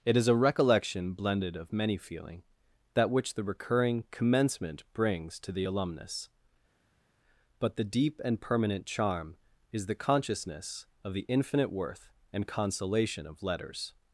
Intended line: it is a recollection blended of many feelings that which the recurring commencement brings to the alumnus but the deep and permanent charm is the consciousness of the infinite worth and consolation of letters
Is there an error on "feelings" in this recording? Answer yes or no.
yes